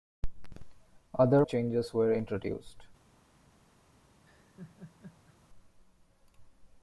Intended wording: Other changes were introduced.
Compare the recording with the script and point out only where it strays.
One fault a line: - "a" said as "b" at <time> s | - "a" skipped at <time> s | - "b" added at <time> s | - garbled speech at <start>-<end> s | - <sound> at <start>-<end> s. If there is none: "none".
- laugh at 4.2-5.4 s